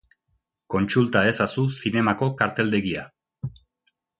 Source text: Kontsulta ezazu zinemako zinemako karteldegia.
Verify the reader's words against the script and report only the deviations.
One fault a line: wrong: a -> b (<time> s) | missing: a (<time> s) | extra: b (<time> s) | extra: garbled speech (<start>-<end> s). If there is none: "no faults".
missing: zinemako (2.3 s)